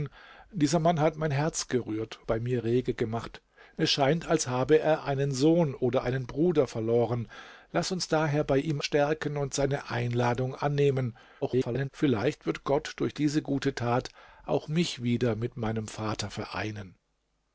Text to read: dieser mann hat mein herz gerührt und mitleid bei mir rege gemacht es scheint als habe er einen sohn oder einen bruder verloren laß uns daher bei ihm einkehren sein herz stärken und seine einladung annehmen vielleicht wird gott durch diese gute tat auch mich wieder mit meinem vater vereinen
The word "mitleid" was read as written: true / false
false